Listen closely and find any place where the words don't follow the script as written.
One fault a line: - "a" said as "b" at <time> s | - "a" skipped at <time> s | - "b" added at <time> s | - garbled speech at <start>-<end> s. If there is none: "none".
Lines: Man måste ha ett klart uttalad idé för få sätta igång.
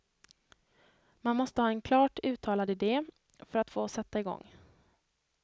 - "ett" said as "en" at 1.7 s
- "att" added at 3.6 s